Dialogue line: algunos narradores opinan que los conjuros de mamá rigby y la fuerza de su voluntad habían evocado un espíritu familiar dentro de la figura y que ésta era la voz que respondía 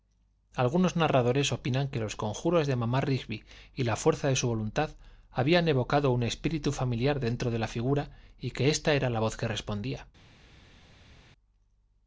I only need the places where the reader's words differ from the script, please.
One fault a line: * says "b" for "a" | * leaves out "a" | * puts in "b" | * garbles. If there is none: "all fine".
all fine